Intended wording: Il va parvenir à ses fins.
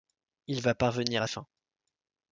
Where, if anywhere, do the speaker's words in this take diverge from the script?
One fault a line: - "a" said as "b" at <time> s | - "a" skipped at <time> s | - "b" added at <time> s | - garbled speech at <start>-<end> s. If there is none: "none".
- "ses" skipped at 1.3 s